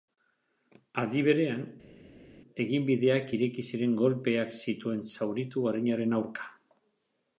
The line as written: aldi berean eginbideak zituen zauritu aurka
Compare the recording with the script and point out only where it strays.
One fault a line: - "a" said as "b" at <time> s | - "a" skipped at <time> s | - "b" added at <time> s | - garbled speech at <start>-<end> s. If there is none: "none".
- "ireki ziren kolpeak" added at 3.4 s
- "arinaren" added at 5.7 s